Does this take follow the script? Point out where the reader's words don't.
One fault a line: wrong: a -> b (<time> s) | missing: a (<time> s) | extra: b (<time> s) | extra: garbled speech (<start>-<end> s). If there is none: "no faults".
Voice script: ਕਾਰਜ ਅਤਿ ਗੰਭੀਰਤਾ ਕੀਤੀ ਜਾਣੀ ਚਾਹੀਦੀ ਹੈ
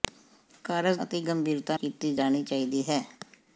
no faults